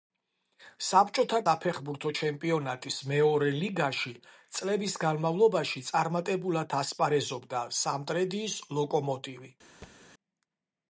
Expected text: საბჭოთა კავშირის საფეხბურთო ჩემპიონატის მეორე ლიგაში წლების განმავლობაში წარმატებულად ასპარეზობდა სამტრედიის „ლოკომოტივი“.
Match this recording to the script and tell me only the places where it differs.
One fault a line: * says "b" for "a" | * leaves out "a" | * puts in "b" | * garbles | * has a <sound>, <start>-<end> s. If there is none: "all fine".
* leaves out "კავშირის"
* has a thud, 9.8-10.0 s